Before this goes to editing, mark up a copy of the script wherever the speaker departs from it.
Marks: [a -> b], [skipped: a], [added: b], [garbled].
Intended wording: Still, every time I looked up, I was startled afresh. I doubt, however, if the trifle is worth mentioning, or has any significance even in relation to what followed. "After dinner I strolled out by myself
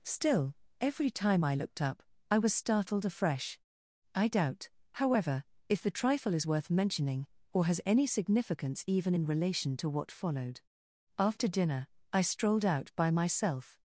Still, every time I looked up, I was startled afresh. I doubt, however, if the trifle is worth mentioning, or has any significance even in relation to what followed. "After dinner I strolled out by myself